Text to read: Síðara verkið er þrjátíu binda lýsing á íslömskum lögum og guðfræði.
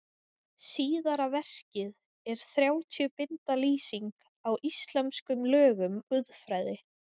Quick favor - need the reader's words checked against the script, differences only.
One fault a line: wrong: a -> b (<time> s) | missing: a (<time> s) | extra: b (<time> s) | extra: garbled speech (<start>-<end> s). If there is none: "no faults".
missing: og (6.0 s)